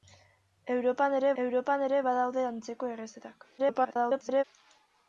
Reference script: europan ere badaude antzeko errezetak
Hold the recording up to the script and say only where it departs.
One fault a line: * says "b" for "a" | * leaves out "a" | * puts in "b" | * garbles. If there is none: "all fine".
* puts in "europan ere"
* garbles